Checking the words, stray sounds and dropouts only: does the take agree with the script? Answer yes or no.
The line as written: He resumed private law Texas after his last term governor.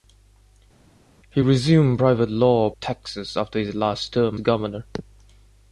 yes